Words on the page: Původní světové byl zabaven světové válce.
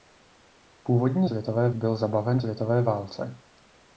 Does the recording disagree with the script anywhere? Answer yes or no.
no